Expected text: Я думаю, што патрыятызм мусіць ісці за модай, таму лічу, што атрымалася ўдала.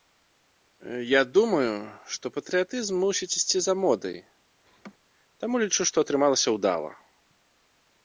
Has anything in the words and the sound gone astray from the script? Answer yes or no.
yes